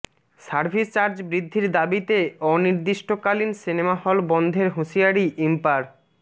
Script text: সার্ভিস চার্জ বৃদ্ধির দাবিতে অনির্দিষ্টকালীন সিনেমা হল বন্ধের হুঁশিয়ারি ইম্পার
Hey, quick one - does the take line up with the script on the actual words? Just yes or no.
yes